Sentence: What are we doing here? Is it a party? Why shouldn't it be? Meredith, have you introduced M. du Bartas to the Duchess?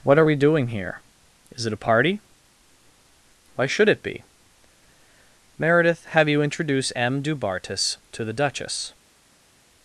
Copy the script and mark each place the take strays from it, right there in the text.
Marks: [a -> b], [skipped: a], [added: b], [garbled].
What are we doing here? Is it a party? Why [shouldn't -> should] it be? Meredith, have you [introduced -> introduce] M. du Bartas to the Duchess?